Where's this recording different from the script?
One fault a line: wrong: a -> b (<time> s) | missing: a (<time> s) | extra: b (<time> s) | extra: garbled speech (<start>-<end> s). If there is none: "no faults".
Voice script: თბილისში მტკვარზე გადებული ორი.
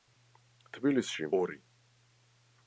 missing: მტკვარზე გადებული (1.3 s)